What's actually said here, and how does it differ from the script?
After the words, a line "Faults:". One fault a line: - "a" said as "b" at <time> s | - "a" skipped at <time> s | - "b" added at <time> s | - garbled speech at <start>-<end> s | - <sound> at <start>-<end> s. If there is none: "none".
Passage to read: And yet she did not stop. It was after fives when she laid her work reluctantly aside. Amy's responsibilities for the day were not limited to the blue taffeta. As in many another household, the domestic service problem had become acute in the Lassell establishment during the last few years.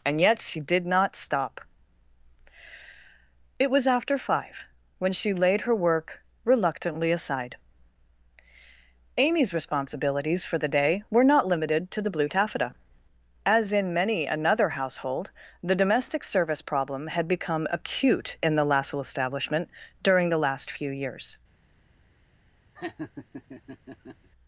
And yet she did not stop. It was after five when she laid her work reluctantly aside. Amy's responsibilities for the day were not limited to the blue taffeta. As in many another household, the domestic service problem had become acute in the Lassell establishment during the last few years.
Faults:
- "fives" said as "five" at 4.2 s
- laugh at 22.8-24.3 s